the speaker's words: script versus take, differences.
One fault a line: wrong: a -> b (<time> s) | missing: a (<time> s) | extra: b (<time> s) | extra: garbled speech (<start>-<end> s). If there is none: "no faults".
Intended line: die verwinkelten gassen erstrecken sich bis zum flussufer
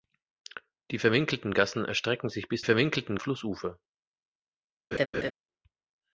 wrong: zum -> verwinkelten (2.6 s)